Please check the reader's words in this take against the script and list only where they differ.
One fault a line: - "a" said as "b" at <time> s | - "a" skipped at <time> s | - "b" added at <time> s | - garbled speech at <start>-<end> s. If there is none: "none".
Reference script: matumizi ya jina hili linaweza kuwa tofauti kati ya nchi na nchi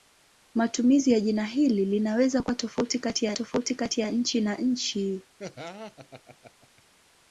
- "tofauti kati ya" added at 3.3 s